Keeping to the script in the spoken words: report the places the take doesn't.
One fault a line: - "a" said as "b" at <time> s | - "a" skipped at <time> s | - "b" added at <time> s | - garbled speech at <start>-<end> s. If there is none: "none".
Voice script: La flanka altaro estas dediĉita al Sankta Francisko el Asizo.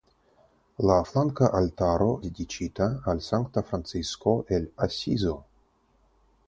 - "estas" skipped at 2.1 s